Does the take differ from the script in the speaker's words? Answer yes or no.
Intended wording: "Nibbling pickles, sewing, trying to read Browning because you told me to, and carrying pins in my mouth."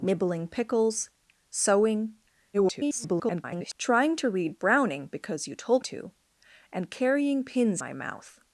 yes